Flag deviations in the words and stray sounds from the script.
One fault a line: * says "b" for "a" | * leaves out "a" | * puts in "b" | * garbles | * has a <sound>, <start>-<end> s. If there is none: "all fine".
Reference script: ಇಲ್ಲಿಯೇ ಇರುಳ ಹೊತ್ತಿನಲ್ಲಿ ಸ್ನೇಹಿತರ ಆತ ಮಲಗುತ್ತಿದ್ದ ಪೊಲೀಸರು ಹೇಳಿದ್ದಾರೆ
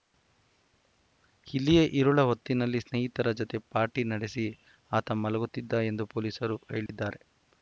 * puts in "ಜತೆ ಪಾರ್ಟಿ ನಡೆಸಿ"
* puts in "ಎಂದು"
* has a dropout, 6.9-6.9 s